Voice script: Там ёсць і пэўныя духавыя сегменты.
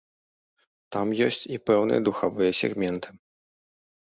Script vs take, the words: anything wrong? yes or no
no